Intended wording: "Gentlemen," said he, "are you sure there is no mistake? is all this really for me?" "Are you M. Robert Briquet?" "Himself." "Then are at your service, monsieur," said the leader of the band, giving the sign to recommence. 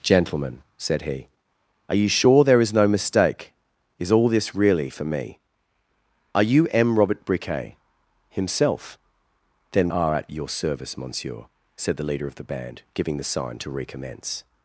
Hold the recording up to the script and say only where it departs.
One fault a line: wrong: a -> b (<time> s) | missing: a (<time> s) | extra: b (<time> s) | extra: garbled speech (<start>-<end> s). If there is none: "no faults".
no faults